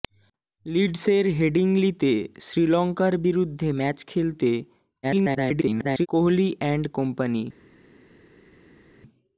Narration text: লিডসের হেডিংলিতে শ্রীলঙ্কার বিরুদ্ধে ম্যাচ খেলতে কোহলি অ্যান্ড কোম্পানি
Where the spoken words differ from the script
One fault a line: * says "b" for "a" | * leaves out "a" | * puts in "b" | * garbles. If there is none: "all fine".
* garbles